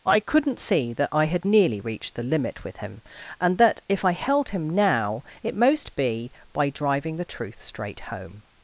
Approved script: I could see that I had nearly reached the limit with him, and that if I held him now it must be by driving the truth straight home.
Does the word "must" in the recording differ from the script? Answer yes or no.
yes